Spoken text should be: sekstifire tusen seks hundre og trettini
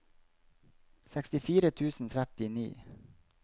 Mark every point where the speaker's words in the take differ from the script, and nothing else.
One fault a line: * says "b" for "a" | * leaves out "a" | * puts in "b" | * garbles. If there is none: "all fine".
* leaves out "seks hundre og"